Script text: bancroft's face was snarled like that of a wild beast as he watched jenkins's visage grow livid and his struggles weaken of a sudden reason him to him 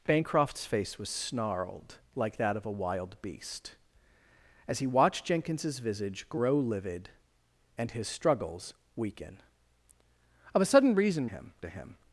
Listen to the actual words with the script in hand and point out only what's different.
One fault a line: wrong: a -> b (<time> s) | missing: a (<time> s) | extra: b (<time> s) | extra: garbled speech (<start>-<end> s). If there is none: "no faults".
no faults